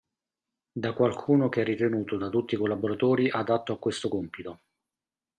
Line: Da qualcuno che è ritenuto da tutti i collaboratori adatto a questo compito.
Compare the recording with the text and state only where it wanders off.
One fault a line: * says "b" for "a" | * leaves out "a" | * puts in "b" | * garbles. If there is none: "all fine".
all fine